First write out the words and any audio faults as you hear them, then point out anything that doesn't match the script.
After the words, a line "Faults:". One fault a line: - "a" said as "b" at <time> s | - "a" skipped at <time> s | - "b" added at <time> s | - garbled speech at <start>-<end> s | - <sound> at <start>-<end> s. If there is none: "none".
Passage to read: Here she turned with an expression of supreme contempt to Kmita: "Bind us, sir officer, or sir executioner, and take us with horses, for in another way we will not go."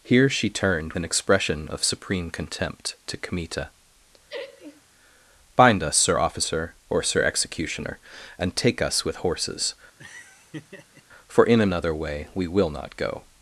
Here she turned an expression of supreme contempt to Kmita: "Bind us, sir officer, or sir executioner, and take us with horses, for in another way we will not go."
Faults:
- "with" skipped at 0.9 s
- laugh at 4.3-4.8 s
- laugh at 10.0-11.0 s